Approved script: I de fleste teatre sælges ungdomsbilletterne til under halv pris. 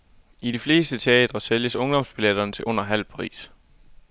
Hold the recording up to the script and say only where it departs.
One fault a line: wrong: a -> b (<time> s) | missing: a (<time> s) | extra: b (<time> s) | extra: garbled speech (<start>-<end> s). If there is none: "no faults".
no faults